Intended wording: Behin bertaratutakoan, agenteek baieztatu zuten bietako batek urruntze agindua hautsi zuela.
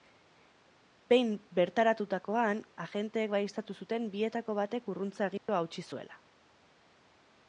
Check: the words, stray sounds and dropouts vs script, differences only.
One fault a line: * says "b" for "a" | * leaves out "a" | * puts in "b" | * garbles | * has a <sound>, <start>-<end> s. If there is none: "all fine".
* has a dropout, 5.4-5.5 s